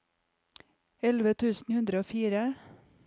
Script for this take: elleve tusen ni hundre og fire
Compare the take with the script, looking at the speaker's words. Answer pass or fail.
fail